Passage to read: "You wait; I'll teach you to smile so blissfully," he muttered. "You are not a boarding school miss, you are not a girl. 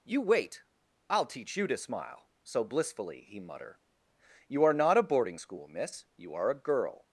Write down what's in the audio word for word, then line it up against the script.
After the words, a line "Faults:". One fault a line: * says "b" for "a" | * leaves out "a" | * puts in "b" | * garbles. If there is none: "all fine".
"You wait; I'll teach you to smile so blissfully," he mutter. "You are not a boarding school miss, you are a girl.
Faults:
* says "mutter" for "muttered"
* leaves out "not"